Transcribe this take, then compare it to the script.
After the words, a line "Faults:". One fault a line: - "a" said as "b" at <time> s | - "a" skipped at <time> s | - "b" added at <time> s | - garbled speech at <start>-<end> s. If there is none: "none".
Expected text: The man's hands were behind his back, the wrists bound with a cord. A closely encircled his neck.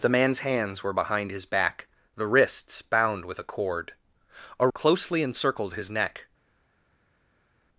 The man's hands were behind his back, the wrists bound with a cord. A closely encircled his neck.
Faults:
none